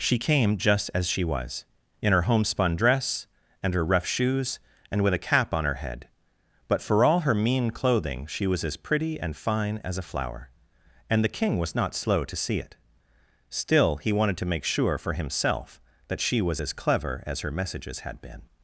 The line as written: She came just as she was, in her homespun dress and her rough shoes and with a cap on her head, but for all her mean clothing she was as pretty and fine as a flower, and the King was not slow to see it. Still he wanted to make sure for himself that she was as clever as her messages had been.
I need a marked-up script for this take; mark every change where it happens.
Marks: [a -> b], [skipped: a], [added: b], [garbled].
She came just as she was, in her homespun dress and her rough shoes and with a cap on her head, but for all her mean clothing she was as pretty and fine as a flower, and the King was not slow to see it. Still he wanted to make sure for himself that she was as clever as her messages had been.